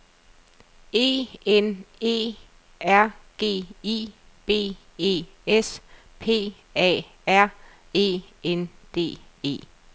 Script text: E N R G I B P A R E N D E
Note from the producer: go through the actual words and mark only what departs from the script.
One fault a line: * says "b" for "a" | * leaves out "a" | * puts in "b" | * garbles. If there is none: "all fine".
* puts in "E"
* puts in "E S"